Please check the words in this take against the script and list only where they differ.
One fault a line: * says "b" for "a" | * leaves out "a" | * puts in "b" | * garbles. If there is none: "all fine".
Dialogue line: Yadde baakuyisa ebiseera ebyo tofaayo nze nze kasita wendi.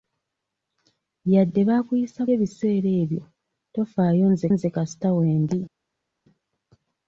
all fine